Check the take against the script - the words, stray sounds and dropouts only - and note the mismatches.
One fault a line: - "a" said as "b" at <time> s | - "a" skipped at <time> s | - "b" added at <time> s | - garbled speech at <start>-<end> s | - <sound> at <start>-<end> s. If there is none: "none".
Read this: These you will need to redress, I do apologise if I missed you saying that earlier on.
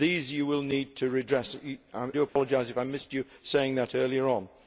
- "I" skipped at 1.6 s
- dropout at 2.3-2.4 s